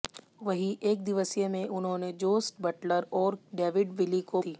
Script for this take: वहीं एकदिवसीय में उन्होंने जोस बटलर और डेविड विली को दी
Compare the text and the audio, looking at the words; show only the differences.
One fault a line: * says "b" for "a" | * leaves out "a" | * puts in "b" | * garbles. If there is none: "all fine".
all fine